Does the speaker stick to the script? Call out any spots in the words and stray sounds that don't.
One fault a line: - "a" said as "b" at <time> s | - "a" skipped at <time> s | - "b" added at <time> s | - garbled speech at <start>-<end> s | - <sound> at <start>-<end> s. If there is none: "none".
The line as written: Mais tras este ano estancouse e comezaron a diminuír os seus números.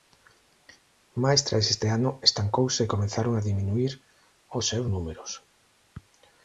none